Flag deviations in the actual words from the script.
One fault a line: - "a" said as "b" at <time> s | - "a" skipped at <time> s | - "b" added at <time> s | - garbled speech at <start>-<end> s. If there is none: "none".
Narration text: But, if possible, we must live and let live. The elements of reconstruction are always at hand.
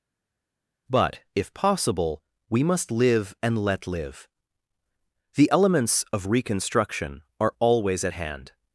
none